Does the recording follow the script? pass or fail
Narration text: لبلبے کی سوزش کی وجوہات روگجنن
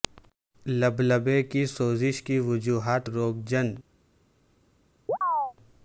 pass